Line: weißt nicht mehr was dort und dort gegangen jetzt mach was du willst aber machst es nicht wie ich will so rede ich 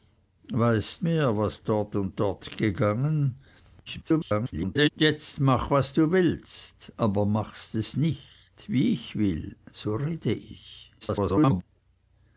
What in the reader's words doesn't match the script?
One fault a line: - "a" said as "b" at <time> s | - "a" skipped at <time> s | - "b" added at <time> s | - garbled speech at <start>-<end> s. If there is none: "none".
- "nicht" skipped at 1.0 s
- garbled speech at 3.9-4.9 s
- garbled speech at 11.0-11.6 s